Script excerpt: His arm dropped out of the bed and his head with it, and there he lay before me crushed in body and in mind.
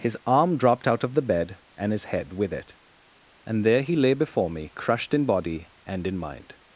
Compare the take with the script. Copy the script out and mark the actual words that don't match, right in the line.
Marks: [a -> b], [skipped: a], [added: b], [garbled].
His arm dropped out of the bed and his head with it, and there he lay before me crushed in body and in mind.